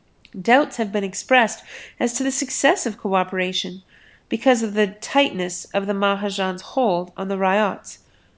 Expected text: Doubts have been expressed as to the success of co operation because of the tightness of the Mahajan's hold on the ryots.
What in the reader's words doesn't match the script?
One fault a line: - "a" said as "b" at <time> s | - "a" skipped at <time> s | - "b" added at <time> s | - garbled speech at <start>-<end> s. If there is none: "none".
none